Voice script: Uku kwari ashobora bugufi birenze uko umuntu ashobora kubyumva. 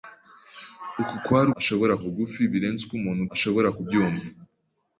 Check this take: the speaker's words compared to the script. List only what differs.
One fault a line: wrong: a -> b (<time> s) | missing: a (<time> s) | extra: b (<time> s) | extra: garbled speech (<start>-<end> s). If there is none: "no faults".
no faults